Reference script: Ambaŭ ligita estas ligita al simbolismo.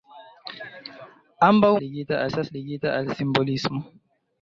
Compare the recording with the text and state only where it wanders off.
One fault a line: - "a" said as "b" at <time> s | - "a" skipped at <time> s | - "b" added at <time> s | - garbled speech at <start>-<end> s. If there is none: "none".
none